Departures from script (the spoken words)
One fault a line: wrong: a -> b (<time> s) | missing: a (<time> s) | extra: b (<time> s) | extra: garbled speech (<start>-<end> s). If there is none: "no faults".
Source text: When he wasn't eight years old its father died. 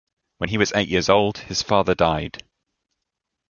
wrong: wasn't -> was (0.6 s)
wrong: its -> his (1.4 s)